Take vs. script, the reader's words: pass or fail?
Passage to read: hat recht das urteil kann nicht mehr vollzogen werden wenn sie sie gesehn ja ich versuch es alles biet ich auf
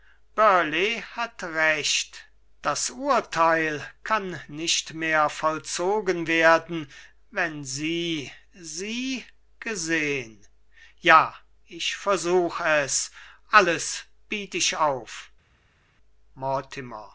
pass